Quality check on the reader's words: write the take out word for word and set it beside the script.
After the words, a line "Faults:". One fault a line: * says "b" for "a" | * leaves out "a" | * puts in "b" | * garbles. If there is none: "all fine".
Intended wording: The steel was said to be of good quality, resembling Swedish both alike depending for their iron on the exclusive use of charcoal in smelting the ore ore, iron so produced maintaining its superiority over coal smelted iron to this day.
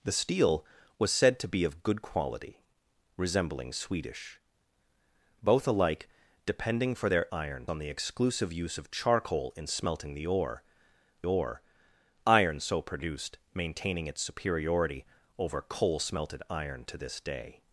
The steel was said to be of good quality, resembling Swedish both alike depending for their iron on the exclusive use of charcoal in smelting the ore ore, iron so produced maintaining its superiority over coal smelted iron to this day.
Faults:
all fine